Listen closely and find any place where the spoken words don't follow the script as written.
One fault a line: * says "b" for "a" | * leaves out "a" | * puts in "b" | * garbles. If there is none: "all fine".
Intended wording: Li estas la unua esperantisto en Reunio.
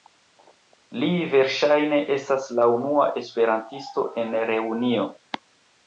* puts in "verŝajne"